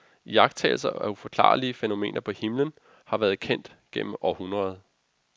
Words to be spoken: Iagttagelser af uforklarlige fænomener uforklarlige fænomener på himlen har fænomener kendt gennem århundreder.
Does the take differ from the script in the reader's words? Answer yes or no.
yes